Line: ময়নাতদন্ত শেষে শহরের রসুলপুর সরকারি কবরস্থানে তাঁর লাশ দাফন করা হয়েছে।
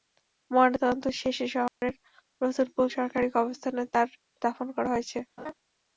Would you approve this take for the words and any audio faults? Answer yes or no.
no